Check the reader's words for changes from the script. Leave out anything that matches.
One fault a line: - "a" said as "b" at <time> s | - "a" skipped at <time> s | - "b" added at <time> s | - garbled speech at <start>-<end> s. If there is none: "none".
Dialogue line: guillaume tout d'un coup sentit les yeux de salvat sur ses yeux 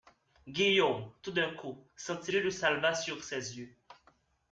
- "les" skipped at 2.3 s